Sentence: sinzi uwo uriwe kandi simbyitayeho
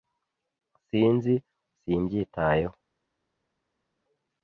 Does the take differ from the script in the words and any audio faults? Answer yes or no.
yes